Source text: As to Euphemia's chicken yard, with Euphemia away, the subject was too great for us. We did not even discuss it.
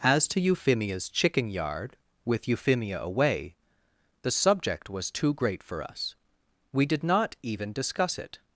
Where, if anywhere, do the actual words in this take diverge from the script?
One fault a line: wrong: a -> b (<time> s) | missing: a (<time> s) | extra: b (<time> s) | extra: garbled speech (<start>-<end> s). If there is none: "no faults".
no faults